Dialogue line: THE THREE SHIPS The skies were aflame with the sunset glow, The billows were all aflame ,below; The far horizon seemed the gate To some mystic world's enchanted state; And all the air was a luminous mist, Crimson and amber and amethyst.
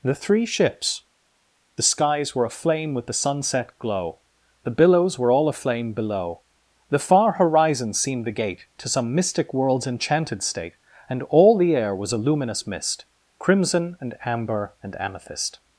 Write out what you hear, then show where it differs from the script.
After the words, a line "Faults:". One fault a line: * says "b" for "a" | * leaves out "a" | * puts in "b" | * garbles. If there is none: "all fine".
THE THREE SHIPS The skies were aflame with the sunset glow, The billows were all aflame ,below; The far horizon seemed the gate To some mystic world's enchanted state; And all the air was a luminous mist, Crimson and amber and amethyst.
Faults:
all fine